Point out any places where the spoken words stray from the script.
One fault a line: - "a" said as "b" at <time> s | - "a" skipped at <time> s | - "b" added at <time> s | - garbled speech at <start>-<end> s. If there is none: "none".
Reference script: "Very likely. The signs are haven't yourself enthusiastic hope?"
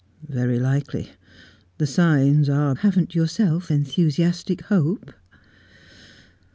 none